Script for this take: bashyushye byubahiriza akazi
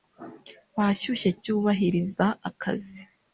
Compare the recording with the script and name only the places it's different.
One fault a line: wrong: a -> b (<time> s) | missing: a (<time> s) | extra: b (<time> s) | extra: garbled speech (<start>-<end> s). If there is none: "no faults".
no faults